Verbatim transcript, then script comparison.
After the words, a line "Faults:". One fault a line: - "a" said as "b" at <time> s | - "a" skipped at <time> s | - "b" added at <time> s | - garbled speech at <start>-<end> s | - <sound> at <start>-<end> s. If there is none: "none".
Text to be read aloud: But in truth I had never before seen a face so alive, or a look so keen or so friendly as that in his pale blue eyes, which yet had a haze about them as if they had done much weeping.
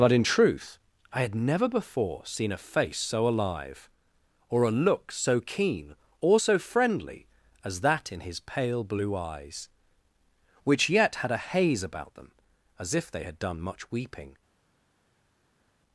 But in truth I had never before seen a face so alive, or a look so keen or so friendly as that in his pale blue eyes, which yet had a haze about them as if they had done much weeping.
Faults:
none